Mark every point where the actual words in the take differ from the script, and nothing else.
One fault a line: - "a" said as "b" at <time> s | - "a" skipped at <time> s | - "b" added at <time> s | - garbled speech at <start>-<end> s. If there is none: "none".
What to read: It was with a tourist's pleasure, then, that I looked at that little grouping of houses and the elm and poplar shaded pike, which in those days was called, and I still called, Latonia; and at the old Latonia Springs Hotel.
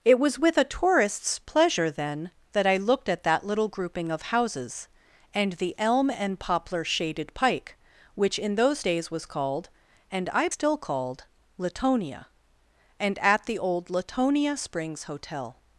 none